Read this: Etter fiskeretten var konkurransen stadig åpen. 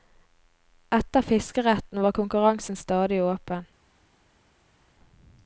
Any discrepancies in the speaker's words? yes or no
no